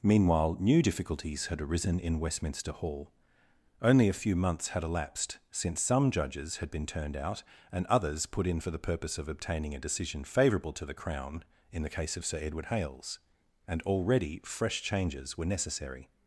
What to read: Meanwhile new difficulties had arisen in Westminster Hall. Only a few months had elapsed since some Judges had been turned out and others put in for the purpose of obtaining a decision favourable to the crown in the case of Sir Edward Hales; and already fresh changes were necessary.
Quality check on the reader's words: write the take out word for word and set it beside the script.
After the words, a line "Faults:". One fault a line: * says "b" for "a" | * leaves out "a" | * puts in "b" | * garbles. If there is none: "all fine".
Meanwhile new difficulties had arisen in Westminster Hall. Only a few months had elapsed since some Judges had been turned out and others put in for the purpose of obtaining a decision favourable to the crown in the case of Sir Edward Hales; and already fresh changes were necessary.
Faults:
all fine